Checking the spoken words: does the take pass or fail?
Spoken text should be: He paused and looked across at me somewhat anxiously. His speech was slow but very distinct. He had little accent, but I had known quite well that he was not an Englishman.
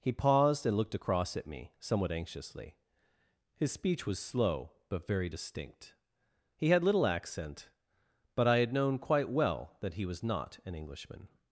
pass